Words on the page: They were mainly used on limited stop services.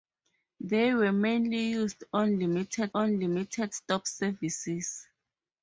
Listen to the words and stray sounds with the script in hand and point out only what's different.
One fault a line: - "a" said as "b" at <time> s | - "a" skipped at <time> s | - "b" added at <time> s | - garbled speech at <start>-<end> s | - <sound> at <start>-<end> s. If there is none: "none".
- "on limited" added at 2.9 s